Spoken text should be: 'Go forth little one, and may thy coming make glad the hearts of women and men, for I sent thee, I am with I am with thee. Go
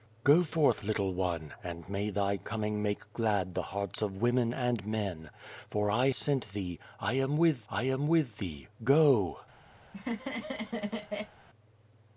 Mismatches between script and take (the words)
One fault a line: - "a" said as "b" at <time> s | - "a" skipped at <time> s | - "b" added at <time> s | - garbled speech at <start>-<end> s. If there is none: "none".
none